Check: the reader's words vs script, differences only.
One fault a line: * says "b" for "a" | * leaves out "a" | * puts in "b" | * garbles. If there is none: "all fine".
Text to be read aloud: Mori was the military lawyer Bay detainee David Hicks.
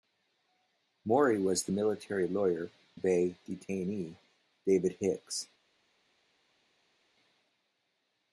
all fine